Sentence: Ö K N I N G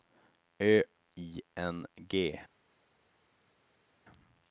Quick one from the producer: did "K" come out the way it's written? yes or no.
no